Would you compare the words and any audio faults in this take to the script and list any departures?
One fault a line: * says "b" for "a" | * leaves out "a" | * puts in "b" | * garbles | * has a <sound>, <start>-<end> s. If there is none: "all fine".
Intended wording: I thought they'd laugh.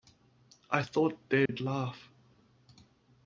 * has a dropout, 1.5-1.5 s